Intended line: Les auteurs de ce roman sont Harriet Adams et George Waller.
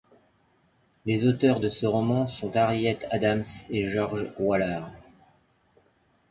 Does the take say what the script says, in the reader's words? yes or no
yes